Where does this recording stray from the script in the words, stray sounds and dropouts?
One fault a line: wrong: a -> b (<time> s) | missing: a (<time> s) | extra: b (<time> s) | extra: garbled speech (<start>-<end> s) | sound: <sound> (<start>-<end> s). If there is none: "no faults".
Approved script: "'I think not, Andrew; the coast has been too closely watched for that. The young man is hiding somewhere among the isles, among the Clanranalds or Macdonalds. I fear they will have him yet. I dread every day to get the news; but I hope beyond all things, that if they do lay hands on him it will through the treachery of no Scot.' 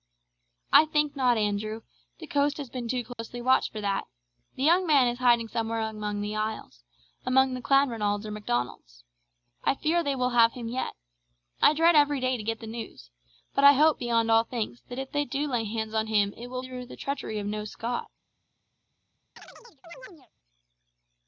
sound: dropout (3.1-3.2 s)
sound: chirp (19.4-20.3 s)